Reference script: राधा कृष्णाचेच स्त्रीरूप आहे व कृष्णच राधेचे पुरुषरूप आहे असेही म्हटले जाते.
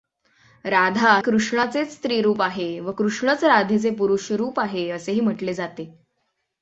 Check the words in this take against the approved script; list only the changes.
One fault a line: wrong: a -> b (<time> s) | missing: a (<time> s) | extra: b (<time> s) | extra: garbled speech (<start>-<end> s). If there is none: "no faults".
no faults